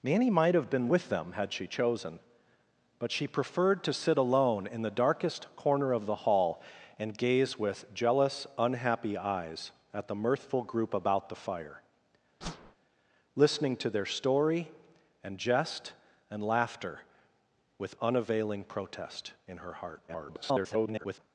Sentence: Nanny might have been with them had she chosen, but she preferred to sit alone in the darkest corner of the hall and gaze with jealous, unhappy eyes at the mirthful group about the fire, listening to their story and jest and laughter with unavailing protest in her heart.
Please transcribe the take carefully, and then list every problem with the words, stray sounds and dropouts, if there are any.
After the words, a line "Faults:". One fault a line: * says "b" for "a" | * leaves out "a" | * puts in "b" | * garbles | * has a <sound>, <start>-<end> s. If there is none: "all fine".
Nanny might have been with them had she chosen, but she preferred to sit alone in the darkest corner of the hall and gaze with jealous, unhappy eyes at the mirthful group about the fire, listening to their story and jest and laughter with unavailing protest in her heart. [garbled]
Faults:
* has a whoosh, 12.4-12.8 s
* garbles